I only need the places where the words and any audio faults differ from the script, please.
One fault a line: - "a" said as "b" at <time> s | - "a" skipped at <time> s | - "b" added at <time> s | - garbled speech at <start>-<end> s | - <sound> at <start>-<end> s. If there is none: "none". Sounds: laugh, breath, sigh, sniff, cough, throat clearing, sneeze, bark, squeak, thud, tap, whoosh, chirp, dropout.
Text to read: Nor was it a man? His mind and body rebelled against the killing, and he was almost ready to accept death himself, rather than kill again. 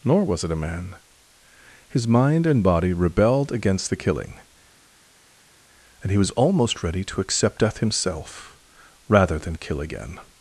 none